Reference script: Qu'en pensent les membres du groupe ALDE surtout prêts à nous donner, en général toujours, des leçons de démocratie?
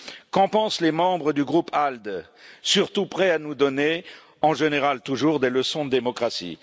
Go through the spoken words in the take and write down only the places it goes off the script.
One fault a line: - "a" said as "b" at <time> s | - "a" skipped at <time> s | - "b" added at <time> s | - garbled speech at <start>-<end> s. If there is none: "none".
none